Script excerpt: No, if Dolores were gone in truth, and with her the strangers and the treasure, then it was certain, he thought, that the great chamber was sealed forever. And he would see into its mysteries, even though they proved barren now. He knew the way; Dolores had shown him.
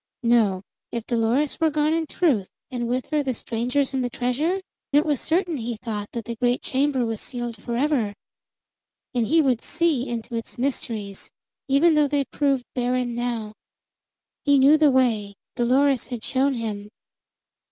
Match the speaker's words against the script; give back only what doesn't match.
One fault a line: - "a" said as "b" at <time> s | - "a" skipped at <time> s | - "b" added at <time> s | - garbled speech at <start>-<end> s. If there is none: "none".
- "then" skipped at 4.6 s